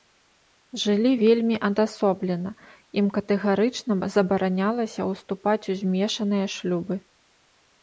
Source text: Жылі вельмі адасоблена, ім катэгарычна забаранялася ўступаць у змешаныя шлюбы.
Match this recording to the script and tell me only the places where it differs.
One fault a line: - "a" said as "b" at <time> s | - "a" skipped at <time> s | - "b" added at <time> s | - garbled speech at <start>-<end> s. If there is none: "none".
none